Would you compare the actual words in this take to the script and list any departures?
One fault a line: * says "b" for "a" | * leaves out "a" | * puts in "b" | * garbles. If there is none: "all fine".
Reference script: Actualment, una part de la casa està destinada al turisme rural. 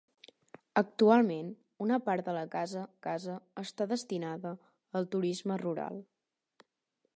* puts in "casa"